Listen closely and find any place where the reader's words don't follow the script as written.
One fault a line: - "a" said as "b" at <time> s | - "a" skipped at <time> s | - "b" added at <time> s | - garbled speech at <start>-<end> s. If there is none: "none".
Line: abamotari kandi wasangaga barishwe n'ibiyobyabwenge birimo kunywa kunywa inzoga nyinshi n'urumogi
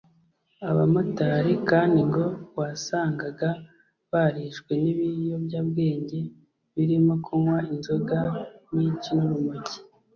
- "ngo" added at 2.1 s
- "kunywa" skipped at 7.6 s